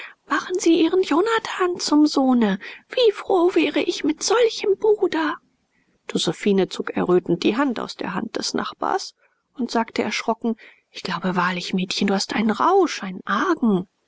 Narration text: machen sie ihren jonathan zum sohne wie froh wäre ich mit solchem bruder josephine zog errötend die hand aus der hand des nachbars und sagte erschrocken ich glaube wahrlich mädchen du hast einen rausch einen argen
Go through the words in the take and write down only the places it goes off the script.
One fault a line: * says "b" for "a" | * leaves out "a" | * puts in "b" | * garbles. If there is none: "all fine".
all fine